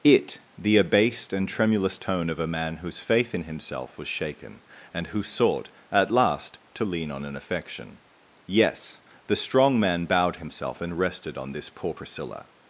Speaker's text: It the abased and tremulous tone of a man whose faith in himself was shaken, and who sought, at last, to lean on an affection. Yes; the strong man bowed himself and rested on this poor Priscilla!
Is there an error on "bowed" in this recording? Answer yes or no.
no